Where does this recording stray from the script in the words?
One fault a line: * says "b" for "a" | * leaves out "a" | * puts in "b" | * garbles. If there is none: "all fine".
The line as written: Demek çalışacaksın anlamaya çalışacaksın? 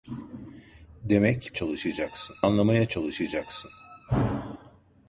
all fine